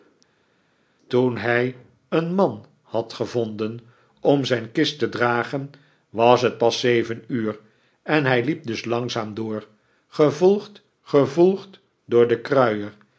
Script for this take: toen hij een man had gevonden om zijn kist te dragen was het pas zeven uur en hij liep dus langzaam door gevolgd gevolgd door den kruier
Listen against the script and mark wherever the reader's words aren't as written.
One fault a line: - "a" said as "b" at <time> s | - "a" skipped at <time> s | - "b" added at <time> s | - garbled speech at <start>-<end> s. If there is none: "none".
none